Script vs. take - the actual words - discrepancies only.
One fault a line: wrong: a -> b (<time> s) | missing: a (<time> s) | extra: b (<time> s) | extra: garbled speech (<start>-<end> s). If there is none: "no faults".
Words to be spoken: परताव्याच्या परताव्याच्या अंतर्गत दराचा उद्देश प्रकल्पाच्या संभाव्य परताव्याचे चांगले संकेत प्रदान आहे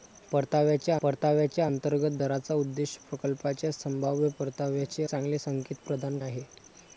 no faults